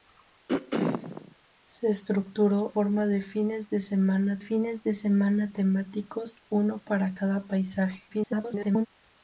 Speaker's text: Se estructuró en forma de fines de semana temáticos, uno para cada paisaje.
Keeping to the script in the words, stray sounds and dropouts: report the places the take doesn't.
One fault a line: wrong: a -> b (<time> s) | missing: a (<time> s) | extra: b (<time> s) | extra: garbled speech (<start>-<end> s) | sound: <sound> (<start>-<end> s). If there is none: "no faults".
sound: throat clearing (0.5-1.4 s)
missing: en (2.7 s)
extra: fines de semana (4.4 s)
extra: garbled speech (8.1-8.9 s)